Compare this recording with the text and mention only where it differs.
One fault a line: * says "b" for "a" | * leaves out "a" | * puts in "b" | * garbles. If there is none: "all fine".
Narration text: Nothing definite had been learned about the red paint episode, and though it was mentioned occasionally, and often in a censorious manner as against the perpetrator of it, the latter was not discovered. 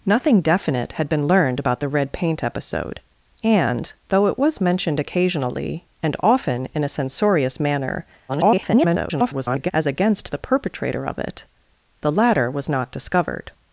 * garbles